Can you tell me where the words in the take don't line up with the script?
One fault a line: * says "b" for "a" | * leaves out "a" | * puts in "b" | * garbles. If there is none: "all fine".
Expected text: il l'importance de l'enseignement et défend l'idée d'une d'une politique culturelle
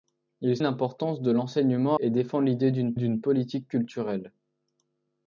all fine